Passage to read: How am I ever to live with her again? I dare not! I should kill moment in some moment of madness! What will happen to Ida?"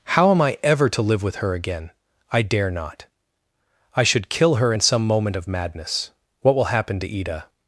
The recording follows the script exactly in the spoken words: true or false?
false